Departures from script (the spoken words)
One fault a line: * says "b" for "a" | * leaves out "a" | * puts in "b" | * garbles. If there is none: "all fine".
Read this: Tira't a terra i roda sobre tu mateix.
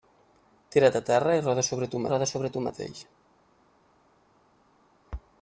* puts in "roda sobre tu"